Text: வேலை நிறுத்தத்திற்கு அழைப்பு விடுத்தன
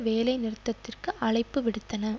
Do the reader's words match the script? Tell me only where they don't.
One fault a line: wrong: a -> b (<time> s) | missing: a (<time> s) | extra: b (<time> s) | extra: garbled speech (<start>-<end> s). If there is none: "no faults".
no faults